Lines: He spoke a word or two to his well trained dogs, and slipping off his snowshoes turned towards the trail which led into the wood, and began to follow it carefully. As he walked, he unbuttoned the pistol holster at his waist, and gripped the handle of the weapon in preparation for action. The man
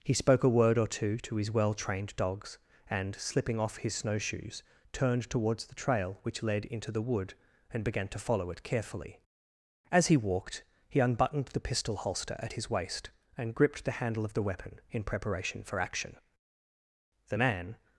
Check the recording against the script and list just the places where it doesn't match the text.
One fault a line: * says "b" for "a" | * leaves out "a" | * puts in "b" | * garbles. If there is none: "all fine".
all fine